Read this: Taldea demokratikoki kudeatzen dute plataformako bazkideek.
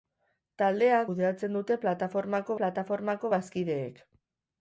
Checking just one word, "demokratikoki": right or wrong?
wrong